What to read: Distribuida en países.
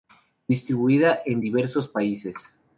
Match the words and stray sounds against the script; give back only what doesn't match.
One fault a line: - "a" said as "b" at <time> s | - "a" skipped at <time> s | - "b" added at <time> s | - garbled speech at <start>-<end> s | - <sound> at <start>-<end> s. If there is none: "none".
- "diversos" added at 1.4 s